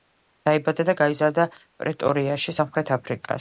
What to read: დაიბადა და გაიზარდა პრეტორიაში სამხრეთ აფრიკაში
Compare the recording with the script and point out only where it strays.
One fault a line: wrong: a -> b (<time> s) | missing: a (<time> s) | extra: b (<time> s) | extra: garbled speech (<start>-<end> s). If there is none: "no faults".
no faults